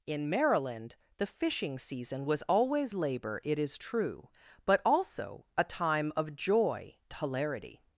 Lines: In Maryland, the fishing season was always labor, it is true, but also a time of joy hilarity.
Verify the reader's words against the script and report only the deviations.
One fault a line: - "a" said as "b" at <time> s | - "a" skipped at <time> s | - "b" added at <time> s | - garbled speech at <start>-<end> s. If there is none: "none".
none